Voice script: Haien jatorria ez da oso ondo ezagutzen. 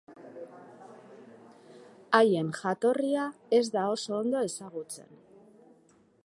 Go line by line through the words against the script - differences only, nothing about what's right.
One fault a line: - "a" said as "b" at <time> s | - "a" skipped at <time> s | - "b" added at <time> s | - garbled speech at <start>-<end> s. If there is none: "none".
none